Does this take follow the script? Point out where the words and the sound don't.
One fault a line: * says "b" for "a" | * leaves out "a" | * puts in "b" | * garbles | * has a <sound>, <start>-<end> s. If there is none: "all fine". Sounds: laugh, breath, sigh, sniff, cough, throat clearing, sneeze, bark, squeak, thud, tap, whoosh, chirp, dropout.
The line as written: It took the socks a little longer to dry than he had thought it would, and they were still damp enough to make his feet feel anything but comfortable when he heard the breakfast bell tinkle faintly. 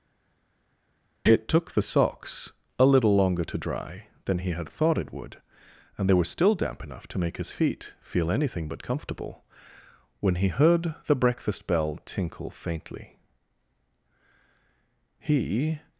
* puts in "He"